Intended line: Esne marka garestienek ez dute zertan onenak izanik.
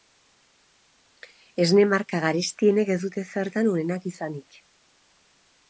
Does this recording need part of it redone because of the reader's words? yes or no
no